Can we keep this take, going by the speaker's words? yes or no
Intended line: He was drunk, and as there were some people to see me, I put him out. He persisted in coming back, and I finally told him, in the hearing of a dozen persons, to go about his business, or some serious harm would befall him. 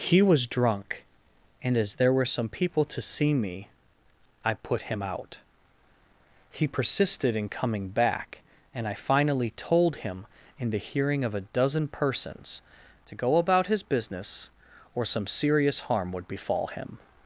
yes